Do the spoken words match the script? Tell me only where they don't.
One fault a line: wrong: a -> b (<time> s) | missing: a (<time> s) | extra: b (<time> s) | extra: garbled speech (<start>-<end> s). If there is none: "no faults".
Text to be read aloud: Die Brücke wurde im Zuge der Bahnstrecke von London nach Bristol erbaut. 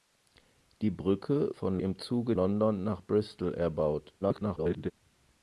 wrong: wurde -> von (1.5 s)
missing: der Bahnstrecke von (2.3 s)
extra: garbled speech (4.2-4.9 s)